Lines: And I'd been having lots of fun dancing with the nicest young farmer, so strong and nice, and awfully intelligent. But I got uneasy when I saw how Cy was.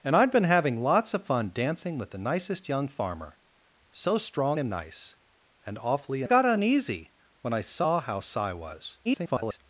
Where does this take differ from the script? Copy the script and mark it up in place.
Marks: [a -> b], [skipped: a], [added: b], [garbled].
And I'd been having lots of fun dancing with the nicest young farmer, so strong and nice, and awfully [skipped: intelligent. But] I got uneasy when I saw how Cy was. [garbled]